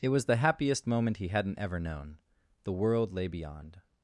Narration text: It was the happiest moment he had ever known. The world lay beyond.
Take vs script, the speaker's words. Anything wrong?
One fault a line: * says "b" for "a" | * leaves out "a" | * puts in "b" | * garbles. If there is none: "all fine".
* says "hadn't" for "had"